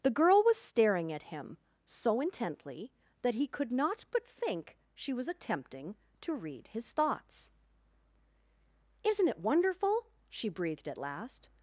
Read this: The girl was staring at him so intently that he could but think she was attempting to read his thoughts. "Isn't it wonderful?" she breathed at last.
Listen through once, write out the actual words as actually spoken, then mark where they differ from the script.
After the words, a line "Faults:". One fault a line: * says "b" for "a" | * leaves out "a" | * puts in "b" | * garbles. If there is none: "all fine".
The girl was staring at him so intently that he could not but think she was attempting to read his thoughts. "Isn't it wonderful?" she breathed at last.
Faults:
* puts in "not"